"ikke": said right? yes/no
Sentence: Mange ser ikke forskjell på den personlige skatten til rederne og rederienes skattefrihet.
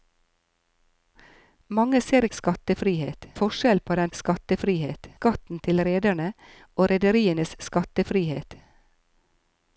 no